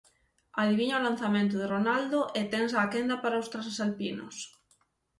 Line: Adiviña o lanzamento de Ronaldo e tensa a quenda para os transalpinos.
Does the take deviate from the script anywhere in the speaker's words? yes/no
no